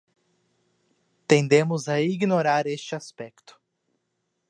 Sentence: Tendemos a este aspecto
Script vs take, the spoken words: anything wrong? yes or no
yes